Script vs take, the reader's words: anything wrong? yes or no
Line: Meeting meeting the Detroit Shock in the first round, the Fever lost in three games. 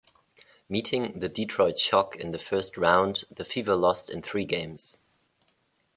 yes